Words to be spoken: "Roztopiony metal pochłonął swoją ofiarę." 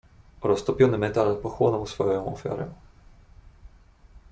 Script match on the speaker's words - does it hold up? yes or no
yes